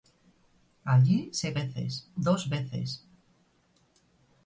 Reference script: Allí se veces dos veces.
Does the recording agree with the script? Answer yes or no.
yes